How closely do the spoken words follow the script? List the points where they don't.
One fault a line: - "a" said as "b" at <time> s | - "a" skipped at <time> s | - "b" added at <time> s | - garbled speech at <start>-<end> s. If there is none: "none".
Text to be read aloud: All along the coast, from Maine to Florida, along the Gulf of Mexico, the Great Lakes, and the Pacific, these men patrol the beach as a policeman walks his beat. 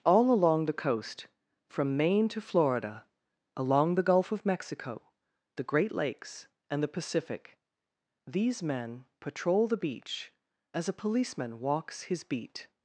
none